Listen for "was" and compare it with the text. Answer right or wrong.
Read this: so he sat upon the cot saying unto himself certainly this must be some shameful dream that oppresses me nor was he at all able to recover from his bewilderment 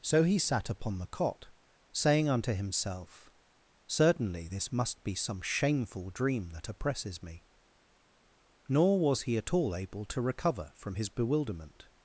right